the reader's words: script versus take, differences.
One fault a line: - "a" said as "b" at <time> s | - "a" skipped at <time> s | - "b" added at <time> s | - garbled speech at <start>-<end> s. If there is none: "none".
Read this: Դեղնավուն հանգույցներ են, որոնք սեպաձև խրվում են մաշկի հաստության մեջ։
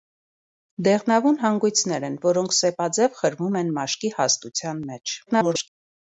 - garbled speech at 5.3-5.7 s